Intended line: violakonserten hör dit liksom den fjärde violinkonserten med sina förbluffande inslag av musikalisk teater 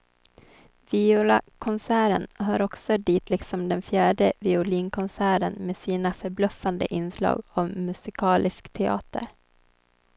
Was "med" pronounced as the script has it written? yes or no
yes